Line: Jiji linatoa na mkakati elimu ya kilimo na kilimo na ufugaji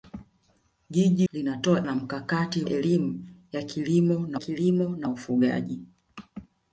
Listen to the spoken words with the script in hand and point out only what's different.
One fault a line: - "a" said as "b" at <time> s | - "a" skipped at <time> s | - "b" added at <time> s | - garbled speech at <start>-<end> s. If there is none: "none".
none